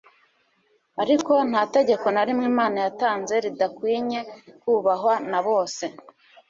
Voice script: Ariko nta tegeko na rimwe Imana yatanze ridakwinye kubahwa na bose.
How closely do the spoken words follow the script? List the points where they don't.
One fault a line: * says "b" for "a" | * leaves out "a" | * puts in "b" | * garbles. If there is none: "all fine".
all fine